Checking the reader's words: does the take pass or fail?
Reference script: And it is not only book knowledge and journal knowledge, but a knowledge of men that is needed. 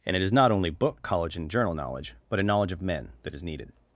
fail